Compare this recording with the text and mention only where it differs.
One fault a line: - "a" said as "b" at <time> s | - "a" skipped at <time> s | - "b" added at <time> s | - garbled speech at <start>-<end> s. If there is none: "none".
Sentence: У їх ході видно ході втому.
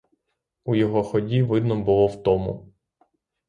- "їх" said as "його" at 0.8 s
- "ході" said as "було" at 1.8 s